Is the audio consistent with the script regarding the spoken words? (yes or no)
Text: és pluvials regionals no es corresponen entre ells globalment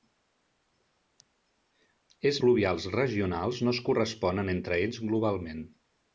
yes